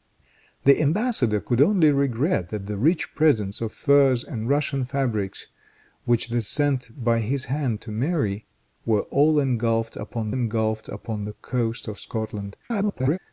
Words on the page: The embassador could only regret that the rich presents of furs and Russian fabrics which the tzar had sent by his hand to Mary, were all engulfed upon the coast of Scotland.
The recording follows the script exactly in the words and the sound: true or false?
false